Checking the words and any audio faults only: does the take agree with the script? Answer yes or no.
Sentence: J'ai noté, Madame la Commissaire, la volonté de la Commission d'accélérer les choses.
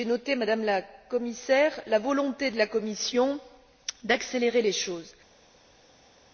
yes